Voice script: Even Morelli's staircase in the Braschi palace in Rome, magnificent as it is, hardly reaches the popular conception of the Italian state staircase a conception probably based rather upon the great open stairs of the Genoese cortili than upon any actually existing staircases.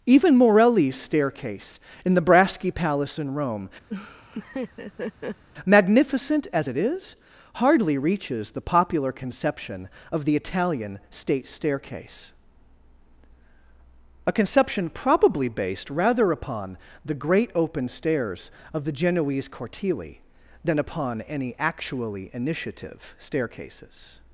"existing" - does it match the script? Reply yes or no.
no